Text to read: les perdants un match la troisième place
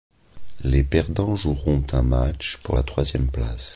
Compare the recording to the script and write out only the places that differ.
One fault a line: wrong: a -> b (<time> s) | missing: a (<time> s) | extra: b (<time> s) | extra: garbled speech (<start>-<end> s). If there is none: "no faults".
extra: joueront (1.4 s)
extra: pour (2.6 s)